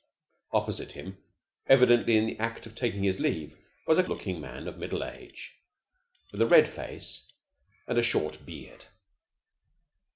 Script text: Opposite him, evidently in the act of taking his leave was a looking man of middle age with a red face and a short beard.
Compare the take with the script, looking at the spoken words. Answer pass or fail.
pass